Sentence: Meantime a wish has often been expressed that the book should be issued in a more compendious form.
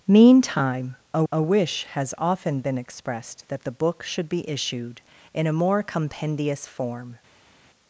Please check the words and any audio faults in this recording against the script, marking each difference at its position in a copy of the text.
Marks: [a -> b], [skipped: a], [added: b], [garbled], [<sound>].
Meantime a [added: a] wish has often been expressed that the book should be issued in a more compendious form.